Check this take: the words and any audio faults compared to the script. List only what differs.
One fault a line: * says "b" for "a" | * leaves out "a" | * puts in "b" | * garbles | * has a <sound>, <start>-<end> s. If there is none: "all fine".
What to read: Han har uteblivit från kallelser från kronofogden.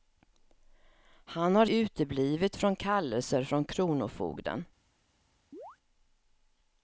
* has a chirp, 5.5-5.8 s